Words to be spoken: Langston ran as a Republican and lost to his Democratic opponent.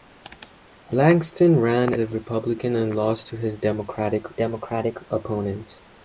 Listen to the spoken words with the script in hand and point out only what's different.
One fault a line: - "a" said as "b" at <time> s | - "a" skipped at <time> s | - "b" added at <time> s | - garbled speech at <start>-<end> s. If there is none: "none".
- "as" skipped at 1.9 s
- "Democratic" added at 4.3 s